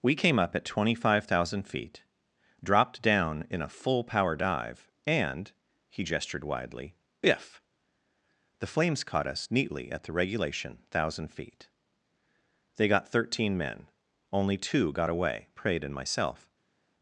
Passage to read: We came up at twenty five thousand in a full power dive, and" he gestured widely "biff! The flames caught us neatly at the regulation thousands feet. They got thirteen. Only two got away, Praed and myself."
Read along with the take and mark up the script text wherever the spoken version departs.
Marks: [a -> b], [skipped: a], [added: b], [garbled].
We came up at twenty five thousand [added: feet dropped down] in a full power dive, and" he gestured widely "biff! The flames caught us neatly at the regulation [thousands -> thousand] feet. They got thirteen. [added: men] Only two got away, Praed and myself."